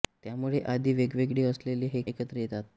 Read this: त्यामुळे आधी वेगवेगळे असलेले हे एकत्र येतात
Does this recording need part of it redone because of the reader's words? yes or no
no